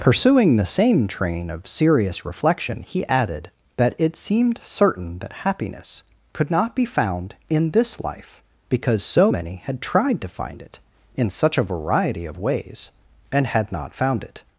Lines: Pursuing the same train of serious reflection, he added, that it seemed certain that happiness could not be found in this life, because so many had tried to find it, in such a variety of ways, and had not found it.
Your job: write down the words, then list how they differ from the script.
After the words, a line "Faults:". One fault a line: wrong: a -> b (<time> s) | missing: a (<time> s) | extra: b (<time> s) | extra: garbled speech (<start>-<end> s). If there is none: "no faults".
Pursuing the same train of serious reflection, he added, that it seemed certain that happiness could not be found in this life, because so many had tried to find it, in such a variety of ways, and had not found it.
Faults:
no faults